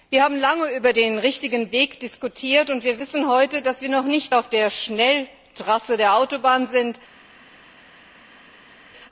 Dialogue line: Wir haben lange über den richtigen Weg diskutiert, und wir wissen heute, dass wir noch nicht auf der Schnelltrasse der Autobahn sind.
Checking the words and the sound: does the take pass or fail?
pass